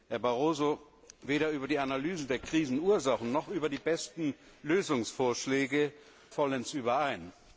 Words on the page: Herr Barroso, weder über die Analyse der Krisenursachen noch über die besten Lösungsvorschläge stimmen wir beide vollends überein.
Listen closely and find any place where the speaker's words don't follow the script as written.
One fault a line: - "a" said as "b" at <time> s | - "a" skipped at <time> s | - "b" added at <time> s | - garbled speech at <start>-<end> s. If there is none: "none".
- "stimmen wir beide" skipped at 5.9 s